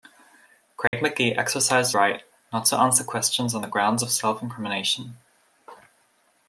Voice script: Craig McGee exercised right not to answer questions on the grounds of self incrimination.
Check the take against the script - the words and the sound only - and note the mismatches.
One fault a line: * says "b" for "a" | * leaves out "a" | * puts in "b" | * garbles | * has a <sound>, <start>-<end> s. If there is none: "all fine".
* has a dropout, 0.9-0.9 s